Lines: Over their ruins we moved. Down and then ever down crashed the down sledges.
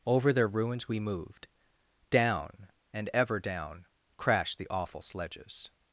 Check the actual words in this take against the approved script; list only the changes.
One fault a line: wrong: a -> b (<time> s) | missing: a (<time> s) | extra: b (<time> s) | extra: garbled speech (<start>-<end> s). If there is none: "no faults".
missing: then (3.1 s)
wrong: down -> awful (4.7 s)